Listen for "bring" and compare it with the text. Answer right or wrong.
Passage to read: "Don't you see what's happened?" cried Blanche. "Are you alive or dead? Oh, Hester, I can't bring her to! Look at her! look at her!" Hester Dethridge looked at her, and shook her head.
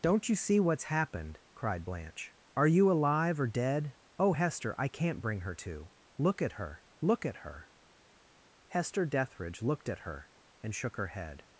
right